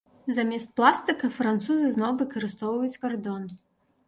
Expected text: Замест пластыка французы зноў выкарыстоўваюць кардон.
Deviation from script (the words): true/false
false